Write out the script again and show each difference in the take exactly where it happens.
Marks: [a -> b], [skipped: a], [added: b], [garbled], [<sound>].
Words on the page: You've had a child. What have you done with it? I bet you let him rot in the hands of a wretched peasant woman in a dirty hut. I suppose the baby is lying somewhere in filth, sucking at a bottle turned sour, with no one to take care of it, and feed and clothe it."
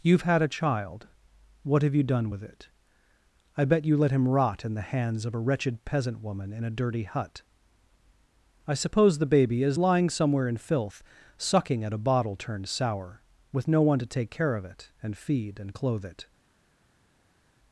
You've had a child. What have you done with it? I bet you let him rot in the hands of a wretched peasant woman in a dirty hut. I suppose the baby is lying somewhere in filth, sucking at a bottle turned sour, with no one to take care of it, and feed and clothe it."